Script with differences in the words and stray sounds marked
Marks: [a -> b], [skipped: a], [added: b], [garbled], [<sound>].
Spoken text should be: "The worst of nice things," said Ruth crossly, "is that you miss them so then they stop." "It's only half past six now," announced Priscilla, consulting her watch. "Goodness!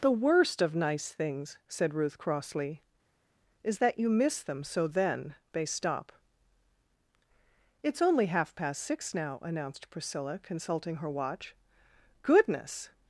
"The worst of nice things," said Ruth crossly, "is that you miss them so then they stop." "It's only half past six now," announced Priscilla, consulting her watch. "Goodness!